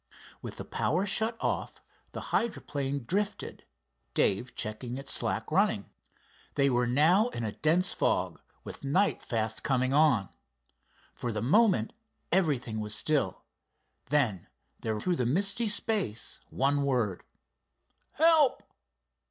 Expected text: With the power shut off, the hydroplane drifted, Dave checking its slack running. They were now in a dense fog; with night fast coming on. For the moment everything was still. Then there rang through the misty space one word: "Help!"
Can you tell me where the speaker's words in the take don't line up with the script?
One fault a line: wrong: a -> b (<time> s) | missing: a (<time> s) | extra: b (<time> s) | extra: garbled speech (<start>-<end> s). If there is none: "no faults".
missing: rang (15.0 s)